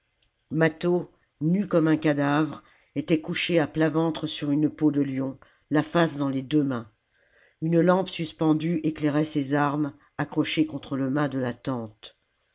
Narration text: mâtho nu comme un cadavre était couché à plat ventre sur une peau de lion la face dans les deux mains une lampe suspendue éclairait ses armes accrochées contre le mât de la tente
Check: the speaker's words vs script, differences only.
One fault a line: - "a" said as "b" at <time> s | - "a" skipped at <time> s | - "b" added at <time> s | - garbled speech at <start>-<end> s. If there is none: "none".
none